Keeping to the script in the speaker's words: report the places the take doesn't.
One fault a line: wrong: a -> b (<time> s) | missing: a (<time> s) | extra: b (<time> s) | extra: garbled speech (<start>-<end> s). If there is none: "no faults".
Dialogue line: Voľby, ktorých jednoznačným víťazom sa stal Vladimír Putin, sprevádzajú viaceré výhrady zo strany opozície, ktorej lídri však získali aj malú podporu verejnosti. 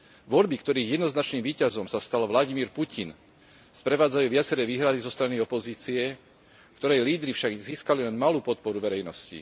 wrong: aj -> len (8.0 s)